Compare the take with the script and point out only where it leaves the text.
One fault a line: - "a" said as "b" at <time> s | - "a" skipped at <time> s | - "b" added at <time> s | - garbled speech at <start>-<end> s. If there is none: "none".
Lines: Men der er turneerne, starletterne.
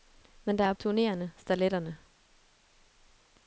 none